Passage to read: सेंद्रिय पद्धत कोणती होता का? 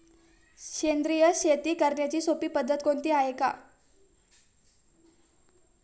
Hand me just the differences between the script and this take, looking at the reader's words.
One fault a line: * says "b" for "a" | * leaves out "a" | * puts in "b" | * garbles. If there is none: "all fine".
* puts in "शेती करण्याची सोपी"
* says "आहे" for "होता"